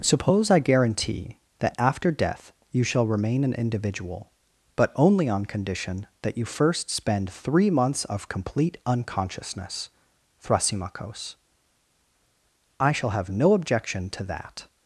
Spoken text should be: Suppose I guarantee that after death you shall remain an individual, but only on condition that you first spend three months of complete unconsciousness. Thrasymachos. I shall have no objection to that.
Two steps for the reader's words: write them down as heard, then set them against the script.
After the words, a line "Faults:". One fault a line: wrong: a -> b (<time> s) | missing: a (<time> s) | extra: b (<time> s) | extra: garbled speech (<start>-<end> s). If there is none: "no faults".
Suppose I guarantee that after death you shall remain an individual, but only on condition that you first spend three months of complete unconsciousness. Thrasymachos. I shall have no objection to that.
Faults:
no faults